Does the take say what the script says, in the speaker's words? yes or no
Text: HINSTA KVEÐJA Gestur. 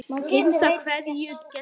yes